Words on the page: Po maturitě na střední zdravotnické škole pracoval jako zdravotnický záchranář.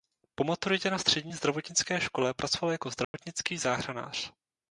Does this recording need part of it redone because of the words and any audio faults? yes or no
yes